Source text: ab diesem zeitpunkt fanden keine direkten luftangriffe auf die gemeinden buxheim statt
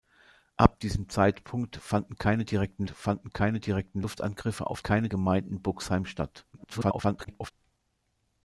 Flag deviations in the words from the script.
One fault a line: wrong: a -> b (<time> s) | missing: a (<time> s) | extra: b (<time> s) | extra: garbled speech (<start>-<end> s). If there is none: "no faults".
extra: fanden keine direkten (2.9 s)
wrong: die -> keine (4.8 s)
extra: garbled speech (6.5-7.5 s)